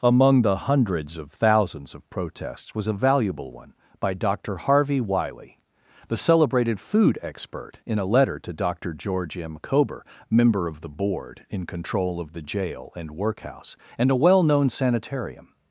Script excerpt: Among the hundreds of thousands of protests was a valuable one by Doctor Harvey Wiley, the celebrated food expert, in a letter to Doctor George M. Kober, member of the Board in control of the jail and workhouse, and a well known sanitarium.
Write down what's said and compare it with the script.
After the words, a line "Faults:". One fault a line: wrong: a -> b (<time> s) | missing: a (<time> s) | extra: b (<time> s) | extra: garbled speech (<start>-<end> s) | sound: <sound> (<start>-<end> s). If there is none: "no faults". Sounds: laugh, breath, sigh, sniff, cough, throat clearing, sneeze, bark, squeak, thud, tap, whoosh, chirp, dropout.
Among the hundreds of thousands of protests was a valuable one by Doctor Harvey Wiley, the celebrated food expert, in a letter to Doctor George M. Kober, member of the Board in control of the jail and workhouse, and a well known sanitarium.
Faults:
no faults